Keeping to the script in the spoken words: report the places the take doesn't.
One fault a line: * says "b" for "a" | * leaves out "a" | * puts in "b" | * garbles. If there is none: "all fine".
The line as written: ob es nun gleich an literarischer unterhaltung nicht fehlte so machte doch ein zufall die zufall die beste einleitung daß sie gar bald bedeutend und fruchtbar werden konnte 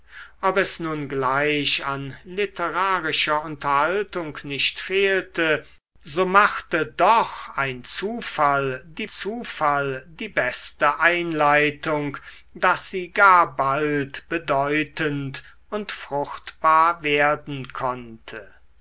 all fine